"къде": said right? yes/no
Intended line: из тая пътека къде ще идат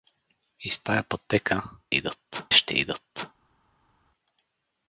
no